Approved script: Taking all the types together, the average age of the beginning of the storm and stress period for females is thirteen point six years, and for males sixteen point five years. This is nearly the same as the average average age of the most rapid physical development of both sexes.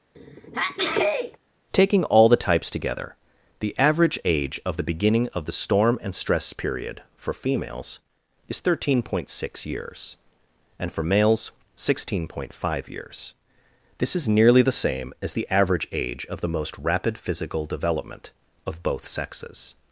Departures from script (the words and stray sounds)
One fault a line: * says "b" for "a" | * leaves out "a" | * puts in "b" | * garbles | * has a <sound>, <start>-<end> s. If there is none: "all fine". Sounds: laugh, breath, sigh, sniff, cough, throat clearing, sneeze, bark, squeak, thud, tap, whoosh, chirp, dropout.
* has a sneeze, 0.1-1.4 s
* leaves out "average"